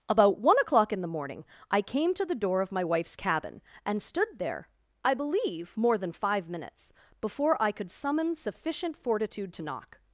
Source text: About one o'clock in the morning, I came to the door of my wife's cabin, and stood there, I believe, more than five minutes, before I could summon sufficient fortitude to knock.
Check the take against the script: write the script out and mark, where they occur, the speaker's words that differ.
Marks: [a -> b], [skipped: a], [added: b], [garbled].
About one o'clock in the morning, I came to the door of my wife's cabin, and stood there, I believe, more than five minutes, before I could summon sufficient fortitude to knock.